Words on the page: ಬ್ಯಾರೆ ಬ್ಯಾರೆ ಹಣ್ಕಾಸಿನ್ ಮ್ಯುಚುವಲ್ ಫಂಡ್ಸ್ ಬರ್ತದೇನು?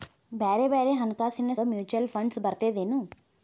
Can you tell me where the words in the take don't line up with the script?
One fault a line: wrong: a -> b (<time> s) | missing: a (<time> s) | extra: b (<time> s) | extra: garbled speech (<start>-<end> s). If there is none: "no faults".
no faults